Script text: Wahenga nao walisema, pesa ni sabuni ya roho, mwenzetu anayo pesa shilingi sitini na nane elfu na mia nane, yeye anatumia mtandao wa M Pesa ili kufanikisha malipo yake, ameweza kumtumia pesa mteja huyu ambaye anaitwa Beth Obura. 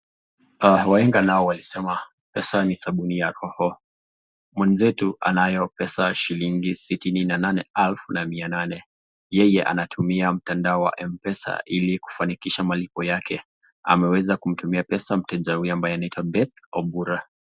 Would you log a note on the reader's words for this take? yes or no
no